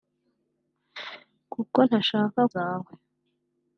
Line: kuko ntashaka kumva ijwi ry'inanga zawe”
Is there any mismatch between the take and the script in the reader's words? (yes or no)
yes